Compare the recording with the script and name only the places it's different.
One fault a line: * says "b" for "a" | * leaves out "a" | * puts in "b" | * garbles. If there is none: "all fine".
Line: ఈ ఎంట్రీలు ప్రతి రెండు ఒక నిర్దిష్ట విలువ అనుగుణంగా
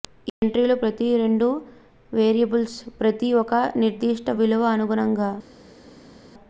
* puts in "వేరియబుల్స్ ప్రతి"